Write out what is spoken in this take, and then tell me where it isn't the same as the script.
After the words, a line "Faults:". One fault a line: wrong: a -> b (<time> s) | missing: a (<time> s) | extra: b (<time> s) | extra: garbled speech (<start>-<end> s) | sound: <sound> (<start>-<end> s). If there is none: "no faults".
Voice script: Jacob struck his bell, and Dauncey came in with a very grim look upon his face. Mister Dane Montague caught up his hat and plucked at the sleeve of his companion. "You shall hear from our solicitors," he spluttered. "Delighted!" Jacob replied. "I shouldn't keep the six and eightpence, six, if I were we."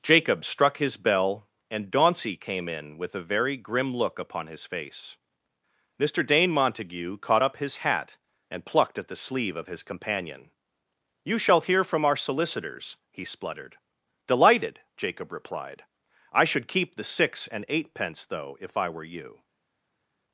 Jacob struck his bell, and Dauncey came in with a very grim look upon his face. Mister Dane Montague caught up his hat and plucked at the sleeve of his companion. "You shall hear from our solicitors," he spluttered. "Delighted!" Jacob replied. "I should keep the six and eightpence, though, if I were you."
Faults:
wrong: shouldn't -> should (16.4 s)
wrong: six -> though (18.2 s)
wrong: we -> you (19.0 s)